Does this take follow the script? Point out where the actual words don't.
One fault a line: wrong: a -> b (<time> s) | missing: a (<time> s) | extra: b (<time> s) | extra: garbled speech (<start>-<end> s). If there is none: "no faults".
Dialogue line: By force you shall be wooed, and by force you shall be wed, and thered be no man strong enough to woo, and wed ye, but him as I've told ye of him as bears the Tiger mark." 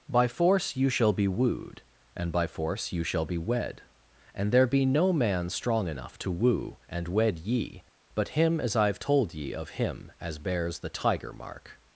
wrong: thered -> there (4.5 s)